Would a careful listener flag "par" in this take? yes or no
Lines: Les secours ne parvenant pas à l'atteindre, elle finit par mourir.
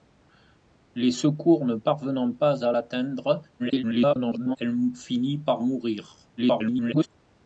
no